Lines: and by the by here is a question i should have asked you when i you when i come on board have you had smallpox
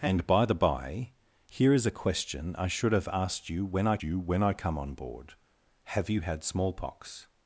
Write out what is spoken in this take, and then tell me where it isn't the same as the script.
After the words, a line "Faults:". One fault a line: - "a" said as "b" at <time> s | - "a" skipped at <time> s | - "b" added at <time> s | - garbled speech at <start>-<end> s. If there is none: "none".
and by the by here is a question i should have asked you when i you when i come on board have you had smallpox
Faults:
none